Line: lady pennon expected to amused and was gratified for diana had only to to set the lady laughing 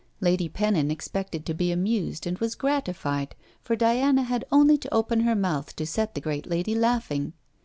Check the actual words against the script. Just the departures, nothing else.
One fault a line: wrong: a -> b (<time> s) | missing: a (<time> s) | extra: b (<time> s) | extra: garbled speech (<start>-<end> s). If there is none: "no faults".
extra: be (1.5 s)
extra: open her mouth (4.9 s)
extra: great (6.2 s)